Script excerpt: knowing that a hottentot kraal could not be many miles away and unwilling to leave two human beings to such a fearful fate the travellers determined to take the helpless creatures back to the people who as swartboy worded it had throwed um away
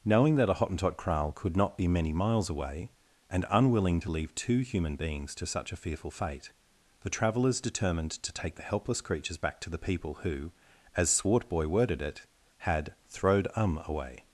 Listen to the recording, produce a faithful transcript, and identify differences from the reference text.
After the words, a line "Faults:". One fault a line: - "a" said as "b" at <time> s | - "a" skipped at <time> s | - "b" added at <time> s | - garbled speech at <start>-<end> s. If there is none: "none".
knowing that a hottentot kraal could not be many miles away and unwilling to leave two human beings to such a fearful fate the travellers determined to take the helpless creatures back to the people who as swartboy worded it had throwed um away
Faults:
none